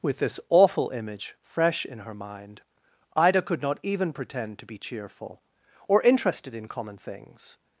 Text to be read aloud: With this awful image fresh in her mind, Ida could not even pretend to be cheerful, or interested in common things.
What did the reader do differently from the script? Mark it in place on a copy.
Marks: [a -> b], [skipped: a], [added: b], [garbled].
With this awful image fresh in her mind, Ida could not even pretend to be cheerful, or interested in common things.